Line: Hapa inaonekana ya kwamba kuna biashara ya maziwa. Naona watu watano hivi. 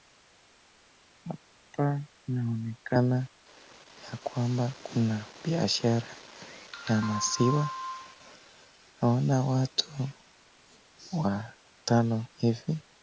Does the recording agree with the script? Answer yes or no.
yes